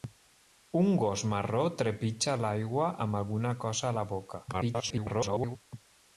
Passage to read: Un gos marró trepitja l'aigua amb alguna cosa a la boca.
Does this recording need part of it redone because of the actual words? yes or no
yes